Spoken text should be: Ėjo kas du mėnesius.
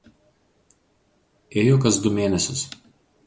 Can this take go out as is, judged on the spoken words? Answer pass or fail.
pass